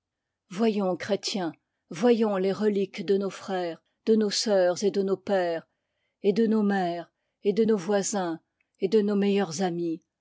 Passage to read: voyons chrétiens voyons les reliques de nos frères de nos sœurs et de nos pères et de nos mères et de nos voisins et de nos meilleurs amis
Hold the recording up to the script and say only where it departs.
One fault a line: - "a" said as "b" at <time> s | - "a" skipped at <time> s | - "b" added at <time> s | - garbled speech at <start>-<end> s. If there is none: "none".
none